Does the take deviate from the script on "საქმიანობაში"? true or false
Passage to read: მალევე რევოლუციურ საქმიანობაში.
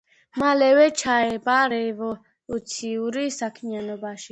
false